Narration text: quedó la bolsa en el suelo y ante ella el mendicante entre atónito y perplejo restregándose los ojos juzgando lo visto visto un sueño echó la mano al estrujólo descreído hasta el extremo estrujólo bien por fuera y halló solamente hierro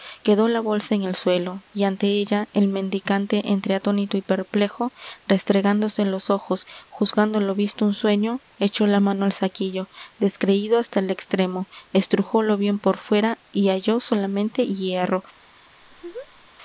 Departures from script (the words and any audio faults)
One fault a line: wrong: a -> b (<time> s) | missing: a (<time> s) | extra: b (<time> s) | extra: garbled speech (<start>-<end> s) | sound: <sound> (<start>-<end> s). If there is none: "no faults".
missing: visto (7.8 s)
wrong: estrujólo -> saquillo (9.3 s)
sound: laugh (15.8-16.5 s)